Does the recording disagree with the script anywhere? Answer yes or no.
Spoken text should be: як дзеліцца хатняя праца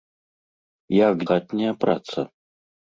yes